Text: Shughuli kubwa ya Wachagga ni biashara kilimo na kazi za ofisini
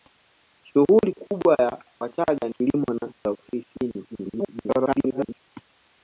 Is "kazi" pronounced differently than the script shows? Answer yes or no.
yes